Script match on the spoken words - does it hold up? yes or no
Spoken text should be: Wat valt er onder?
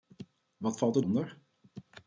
yes